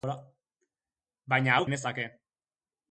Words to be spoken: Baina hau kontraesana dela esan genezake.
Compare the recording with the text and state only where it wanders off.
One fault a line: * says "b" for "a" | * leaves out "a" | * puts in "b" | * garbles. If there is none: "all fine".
* leaves out "kontraesana dela esan"